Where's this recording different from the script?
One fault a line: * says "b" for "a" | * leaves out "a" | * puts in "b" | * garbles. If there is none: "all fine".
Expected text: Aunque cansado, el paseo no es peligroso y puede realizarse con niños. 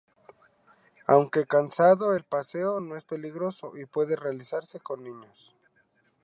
all fine